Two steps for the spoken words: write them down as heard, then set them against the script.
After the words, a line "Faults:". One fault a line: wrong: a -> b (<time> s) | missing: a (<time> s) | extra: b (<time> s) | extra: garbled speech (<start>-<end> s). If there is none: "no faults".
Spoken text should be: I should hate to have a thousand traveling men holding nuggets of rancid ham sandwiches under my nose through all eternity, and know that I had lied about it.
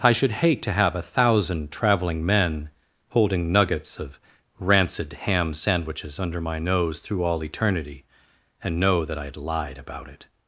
I should hate to have a thousand traveling men holding nuggets of rancid ham sandwiches under my nose through all eternity, and know that I had lied about it.
Faults:
no faults